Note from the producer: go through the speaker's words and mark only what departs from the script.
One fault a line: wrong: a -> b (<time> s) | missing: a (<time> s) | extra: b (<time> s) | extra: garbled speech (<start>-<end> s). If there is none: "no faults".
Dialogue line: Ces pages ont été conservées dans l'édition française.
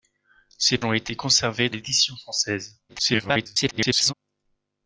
missing: pages (0.8 s)
missing: dans (1.7 s)
extra: garbled speech (2.9-4.1 s)